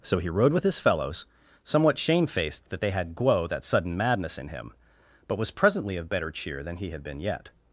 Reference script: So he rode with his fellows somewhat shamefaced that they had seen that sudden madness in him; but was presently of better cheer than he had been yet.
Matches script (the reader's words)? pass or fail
fail